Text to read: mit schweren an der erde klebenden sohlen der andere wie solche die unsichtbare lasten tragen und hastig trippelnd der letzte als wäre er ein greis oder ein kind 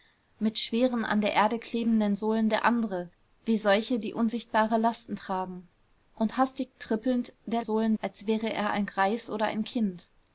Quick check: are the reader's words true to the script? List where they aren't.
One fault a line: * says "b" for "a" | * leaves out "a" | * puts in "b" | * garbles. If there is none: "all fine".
* says "sohlen" for "letzte"